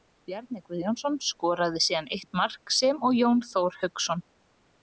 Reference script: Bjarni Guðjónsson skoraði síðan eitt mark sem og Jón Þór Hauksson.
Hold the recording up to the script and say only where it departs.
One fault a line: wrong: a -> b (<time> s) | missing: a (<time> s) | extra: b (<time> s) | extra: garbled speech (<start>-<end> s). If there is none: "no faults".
no faults